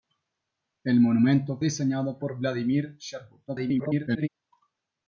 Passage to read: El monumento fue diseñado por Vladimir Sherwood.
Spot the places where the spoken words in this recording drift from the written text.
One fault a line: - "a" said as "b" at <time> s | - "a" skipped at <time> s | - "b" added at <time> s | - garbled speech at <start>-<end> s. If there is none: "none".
- "fue" skipped at 1.6 s
- garbled speech at 3.5-4.3 s